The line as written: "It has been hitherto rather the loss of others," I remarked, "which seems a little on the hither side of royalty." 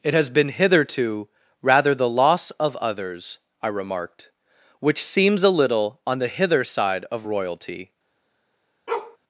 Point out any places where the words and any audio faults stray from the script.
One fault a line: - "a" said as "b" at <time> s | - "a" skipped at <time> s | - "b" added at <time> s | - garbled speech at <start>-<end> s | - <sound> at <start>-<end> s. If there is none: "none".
- bark at 8.9-9.2 s